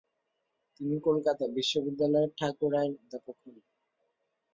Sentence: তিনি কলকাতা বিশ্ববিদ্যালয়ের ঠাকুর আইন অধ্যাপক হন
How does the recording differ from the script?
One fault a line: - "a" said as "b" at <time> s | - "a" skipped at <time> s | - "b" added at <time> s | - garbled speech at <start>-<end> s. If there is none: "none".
none